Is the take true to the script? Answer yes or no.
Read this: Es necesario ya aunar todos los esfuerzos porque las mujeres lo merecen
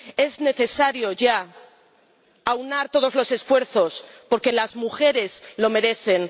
yes